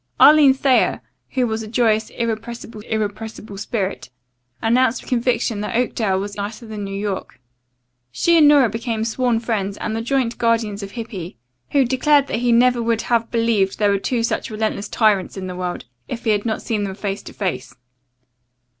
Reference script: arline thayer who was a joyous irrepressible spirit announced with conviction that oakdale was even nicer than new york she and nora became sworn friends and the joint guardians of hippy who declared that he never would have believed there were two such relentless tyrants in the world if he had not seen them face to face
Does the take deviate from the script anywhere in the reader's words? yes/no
yes